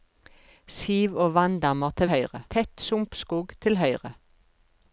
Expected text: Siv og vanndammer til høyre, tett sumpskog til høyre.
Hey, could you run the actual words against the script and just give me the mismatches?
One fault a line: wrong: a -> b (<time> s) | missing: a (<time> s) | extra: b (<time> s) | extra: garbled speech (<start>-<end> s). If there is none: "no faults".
no faults